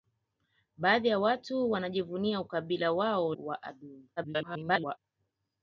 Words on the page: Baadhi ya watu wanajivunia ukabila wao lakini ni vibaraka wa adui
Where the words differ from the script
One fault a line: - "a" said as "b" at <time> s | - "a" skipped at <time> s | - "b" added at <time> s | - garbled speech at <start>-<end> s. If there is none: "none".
- "lakini ni vibaraka" skipped at 3.4 s
- garbled speech at 4.2-5.0 s